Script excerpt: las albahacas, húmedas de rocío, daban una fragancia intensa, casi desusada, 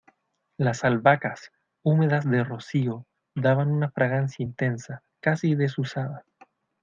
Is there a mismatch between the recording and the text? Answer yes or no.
no